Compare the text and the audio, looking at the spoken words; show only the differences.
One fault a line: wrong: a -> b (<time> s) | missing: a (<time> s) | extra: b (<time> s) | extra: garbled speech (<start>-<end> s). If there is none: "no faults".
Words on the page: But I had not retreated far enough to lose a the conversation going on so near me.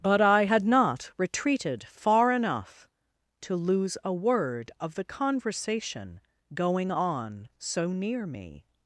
extra: word of (4.1 s)